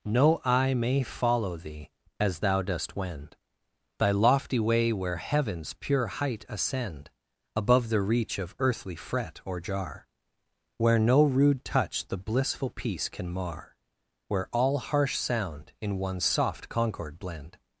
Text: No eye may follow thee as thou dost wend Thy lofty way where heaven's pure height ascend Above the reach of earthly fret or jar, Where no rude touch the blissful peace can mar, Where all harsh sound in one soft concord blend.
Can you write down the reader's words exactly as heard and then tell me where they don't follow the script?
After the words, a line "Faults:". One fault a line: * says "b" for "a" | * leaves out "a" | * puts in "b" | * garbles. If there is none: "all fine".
No eye may follow thee as thou dost wend Thy lofty way where heaven's pure height ascend Above the reach of earthly fret or jar, Where no rude touch the blissful peace can mar, Where all harsh sound in one soft concord blend.
Faults:
all fine